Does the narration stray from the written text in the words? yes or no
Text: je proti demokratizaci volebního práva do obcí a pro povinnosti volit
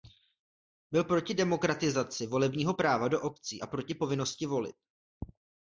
yes